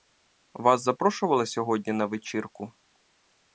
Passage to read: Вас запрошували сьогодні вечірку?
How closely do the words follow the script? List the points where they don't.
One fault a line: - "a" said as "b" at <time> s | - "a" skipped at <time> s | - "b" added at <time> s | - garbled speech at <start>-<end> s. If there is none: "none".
- "на" added at 1.9 s